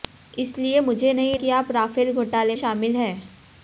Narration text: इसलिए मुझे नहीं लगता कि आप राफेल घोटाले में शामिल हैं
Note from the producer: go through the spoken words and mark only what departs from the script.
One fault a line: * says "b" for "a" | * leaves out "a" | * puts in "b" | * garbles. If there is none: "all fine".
* leaves out "लगता"
* leaves out "में"